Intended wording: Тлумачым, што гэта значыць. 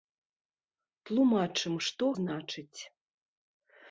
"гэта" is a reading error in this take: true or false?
true